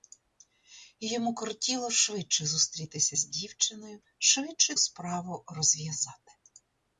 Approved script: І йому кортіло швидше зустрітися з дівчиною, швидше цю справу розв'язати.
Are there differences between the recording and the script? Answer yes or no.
yes